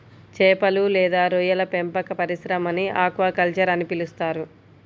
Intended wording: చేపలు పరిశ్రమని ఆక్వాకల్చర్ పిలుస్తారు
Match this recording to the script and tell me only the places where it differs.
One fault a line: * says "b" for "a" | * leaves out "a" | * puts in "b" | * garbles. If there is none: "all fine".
* puts in "లేదా రొయ్యల పెంపక"
* puts in "అని"